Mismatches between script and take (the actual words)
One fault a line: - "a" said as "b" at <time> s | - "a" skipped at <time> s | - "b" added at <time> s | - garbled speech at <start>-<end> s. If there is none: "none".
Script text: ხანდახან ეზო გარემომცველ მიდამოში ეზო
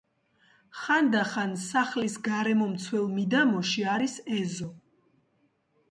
- "ეზო" said as "სახლის" at 1.6 s
- "არის" added at 3.9 s